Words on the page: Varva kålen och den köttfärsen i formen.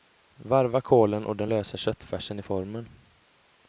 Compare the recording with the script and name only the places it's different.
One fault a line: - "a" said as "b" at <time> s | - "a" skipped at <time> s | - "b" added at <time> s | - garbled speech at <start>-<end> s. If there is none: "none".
- "lösa" added at 1.5 s